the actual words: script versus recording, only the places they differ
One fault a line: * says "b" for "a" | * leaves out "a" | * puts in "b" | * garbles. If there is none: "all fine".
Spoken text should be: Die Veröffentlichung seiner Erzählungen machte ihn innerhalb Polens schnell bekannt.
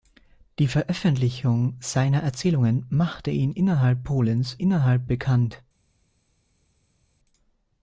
* says "innerhalb" for "schnell"